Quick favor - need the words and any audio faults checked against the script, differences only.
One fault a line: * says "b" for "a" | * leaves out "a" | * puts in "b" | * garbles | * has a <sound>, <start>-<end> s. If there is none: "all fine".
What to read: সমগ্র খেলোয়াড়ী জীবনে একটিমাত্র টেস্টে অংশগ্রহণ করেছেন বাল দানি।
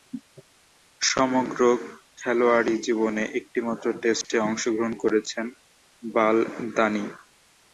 * has a dropout, 4.2-4.2 s